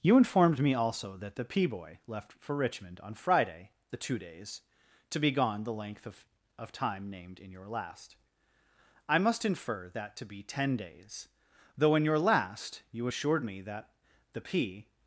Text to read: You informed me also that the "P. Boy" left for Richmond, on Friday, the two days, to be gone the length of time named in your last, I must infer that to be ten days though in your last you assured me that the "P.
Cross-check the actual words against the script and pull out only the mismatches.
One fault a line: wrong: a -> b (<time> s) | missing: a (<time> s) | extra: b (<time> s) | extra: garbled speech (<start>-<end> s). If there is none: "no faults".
extra: of (6.6 s)